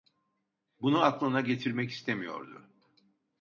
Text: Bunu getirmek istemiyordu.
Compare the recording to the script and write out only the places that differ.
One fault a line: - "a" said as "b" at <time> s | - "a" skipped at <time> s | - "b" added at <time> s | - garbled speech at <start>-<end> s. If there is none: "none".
- "aklına" added at 1.0 s